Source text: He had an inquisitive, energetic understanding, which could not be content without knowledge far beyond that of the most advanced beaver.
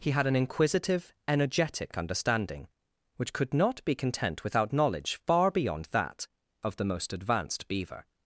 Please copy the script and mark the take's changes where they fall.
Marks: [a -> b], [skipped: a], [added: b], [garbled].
He had an inquisitive, energetic understanding, which could not be content without knowledge far beyond that of the most advanced beaver.